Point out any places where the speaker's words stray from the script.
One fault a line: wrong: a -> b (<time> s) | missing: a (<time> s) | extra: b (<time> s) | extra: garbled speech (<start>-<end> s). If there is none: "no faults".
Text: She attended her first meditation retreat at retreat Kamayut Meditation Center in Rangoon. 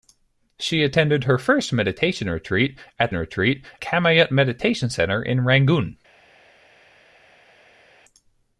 no faults